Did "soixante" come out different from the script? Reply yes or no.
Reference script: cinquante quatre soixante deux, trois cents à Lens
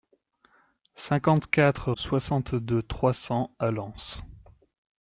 no